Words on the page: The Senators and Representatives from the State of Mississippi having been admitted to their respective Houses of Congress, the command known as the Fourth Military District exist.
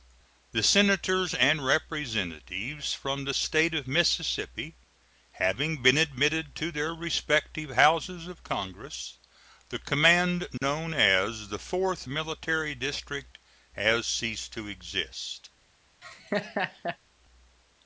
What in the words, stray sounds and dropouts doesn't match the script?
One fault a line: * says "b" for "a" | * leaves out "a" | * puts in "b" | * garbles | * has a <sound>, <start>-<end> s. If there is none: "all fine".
* has a dropout, 10.6-10.6 s
* puts in "has ceased to"
* has a laugh, 16.0-17.0 s